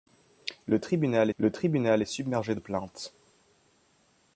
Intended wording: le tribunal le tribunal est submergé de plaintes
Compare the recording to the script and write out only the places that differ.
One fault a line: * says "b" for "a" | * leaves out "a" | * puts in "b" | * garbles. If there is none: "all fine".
all fine